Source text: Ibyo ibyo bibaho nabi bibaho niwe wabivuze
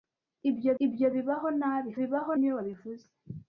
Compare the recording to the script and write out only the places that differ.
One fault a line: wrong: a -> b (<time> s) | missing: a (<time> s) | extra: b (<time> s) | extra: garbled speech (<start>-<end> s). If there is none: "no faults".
no faults